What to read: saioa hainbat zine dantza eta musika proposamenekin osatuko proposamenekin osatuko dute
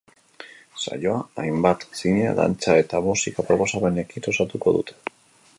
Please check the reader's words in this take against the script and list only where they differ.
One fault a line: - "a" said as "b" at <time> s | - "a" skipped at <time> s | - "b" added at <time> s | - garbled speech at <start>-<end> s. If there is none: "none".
- "proposamenekin osatuko" skipped at 4.8 s